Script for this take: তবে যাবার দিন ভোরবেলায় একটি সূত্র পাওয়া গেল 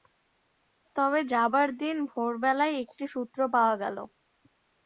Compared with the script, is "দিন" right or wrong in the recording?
right